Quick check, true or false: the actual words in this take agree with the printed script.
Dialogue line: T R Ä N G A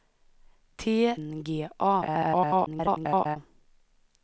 false